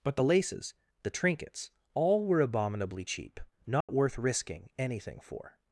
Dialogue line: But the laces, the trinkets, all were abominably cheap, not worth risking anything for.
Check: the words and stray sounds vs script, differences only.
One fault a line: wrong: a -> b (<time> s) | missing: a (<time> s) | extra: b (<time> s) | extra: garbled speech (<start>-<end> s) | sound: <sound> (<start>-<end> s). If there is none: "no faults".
sound: dropout (3.8-3.9 s)